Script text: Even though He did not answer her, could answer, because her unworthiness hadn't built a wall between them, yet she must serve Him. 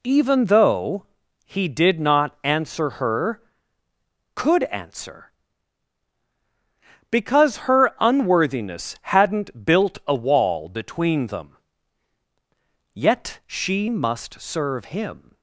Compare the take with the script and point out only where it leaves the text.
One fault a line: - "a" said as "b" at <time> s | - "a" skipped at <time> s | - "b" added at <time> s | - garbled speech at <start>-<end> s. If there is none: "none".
none